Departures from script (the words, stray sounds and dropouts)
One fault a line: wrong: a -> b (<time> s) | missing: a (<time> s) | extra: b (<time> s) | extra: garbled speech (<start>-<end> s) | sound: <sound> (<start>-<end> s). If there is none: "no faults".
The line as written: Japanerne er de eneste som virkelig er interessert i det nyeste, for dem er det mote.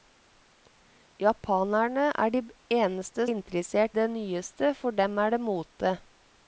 missing: som virkelig (3.3 s)
missing: i (4.0 s)